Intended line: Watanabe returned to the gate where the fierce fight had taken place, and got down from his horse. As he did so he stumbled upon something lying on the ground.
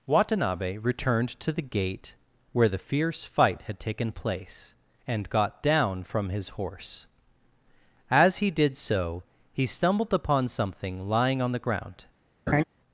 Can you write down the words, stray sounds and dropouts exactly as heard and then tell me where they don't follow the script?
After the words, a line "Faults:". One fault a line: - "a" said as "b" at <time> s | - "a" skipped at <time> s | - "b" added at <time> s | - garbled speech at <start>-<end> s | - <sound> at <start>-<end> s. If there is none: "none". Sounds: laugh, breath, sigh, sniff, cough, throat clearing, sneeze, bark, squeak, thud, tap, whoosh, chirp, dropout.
Watanabe returned to the gate where the fierce fight had taken place, and got down from his horse. As he did so he stumbled upon something lying on the ground.
Faults:
- laugh at 12.5-12.6 s